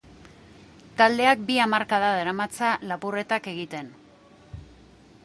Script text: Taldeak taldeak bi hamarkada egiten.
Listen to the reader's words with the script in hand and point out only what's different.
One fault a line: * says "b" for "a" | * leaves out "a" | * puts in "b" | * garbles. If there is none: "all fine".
* leaves out "taldeak"
* puts in "daramatza lapurretak"